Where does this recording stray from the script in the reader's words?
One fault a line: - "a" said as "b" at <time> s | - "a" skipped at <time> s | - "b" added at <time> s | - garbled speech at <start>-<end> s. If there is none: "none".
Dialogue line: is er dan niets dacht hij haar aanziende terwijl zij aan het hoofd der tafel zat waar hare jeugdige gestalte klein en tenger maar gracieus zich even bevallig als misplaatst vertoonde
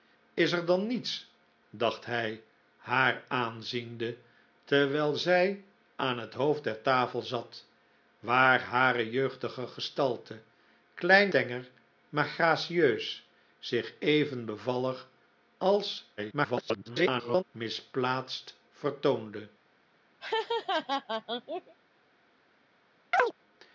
- "en" skipped at 11.3 s
- garbled speech at 16.2-17.4 s